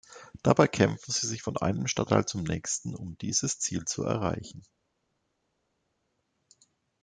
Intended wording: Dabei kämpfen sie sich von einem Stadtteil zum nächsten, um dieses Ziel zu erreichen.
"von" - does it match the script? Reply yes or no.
yes